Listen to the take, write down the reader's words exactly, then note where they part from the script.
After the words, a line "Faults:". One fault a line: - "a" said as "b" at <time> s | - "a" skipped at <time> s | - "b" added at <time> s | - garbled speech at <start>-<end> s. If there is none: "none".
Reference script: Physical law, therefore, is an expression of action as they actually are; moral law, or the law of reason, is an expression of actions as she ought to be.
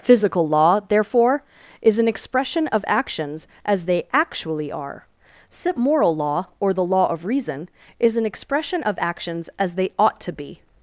Physical law, therefore, is an expression of actions as they actually are; moral law, or the law of reason, is an expression of actions as they ought to be.
Faults:
- "action" said as "actions" at 2.9 s
- "she" said as "they" at 9.7 s